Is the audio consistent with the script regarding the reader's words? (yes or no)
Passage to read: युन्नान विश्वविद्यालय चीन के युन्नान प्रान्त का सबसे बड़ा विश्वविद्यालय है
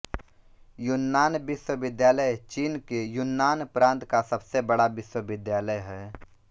yes